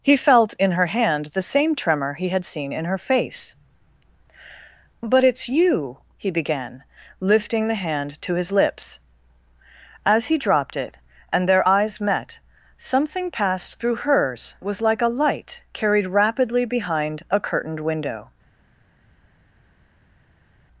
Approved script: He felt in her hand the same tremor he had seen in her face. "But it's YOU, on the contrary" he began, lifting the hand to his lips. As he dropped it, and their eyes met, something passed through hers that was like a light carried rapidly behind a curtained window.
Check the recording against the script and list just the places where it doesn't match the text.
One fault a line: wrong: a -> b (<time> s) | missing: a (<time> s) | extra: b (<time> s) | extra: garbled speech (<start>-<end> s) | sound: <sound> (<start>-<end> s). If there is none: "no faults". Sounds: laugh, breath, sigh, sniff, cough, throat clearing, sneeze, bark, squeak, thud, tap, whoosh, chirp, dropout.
missing: on the contrary (6.0 s)
missing: that (14.5 s)